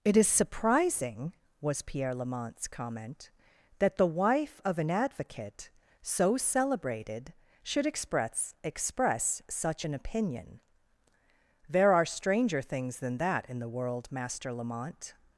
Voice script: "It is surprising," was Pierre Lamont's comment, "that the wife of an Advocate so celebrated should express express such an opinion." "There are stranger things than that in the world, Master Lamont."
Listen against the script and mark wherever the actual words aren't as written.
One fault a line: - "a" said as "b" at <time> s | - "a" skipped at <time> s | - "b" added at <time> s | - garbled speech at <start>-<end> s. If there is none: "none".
none